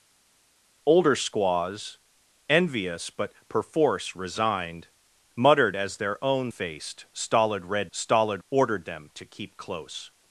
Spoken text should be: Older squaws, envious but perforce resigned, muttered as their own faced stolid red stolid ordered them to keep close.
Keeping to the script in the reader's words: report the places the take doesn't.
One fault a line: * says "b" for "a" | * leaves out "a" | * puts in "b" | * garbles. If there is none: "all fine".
all fine